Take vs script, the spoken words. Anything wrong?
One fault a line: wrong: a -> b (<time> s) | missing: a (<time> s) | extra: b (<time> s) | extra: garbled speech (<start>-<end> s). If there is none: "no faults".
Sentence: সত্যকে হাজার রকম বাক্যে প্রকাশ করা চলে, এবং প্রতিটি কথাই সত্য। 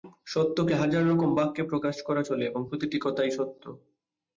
no faults